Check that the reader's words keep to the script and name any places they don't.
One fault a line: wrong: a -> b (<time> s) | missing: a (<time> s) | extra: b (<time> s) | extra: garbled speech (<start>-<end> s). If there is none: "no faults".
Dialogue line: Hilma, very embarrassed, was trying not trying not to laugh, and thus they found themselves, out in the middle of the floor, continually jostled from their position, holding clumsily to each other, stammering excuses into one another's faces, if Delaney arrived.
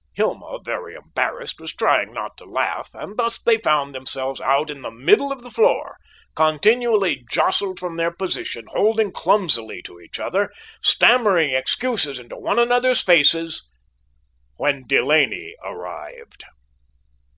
missing: trying not (2.4 s)
wrong: if -> when (14.6 s)